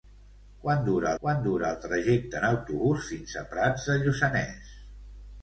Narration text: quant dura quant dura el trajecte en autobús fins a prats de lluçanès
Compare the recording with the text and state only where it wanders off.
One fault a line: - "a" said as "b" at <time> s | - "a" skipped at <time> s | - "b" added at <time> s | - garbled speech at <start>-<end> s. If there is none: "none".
none